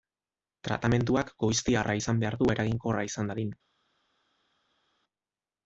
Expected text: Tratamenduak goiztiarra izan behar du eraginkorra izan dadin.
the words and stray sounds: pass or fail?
pass